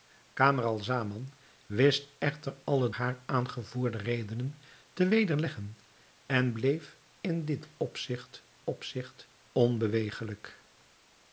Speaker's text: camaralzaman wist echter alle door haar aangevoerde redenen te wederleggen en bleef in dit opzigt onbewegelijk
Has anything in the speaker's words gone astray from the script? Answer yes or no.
yes